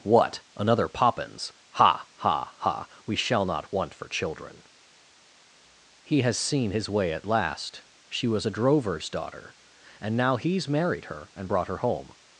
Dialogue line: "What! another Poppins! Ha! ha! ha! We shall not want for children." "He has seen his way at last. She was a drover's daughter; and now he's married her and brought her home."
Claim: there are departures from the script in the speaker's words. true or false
false